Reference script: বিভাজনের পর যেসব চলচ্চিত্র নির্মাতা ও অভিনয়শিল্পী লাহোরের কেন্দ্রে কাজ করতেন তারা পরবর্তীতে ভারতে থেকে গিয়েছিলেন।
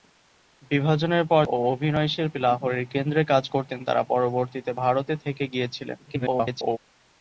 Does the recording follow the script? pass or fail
fail